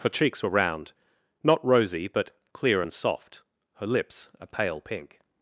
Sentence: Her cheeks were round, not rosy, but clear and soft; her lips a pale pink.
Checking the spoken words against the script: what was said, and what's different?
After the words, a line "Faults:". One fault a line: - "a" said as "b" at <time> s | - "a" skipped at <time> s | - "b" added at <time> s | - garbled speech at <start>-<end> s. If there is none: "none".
Her cheeks were round, not rosy, but clear and soft; her lips a pale pink.
Faults:
none